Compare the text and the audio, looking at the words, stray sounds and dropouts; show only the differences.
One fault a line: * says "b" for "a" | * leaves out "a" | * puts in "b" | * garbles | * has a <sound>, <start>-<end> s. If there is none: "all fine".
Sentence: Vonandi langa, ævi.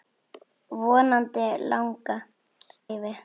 all fine